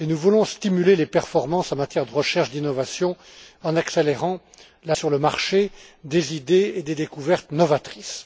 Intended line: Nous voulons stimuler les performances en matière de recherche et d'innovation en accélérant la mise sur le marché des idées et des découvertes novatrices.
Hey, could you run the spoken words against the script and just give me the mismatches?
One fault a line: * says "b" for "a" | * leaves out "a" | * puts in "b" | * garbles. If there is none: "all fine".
* leaves out "mise"